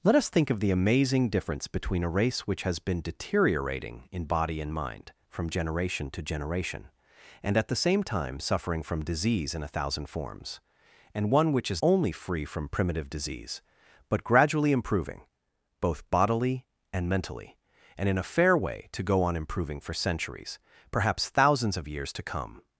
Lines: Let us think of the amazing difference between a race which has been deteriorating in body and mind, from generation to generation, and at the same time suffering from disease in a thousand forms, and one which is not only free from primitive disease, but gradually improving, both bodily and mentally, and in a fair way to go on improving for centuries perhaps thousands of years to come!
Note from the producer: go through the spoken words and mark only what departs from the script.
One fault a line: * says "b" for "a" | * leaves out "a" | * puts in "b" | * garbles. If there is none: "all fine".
* leaves out "not"